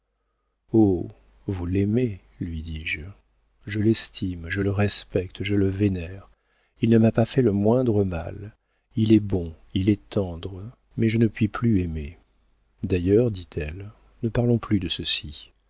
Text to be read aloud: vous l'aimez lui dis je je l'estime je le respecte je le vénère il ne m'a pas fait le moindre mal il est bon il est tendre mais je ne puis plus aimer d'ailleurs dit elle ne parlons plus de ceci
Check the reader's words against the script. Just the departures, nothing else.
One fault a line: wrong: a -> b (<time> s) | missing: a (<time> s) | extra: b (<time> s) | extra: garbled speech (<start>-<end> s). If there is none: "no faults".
no faults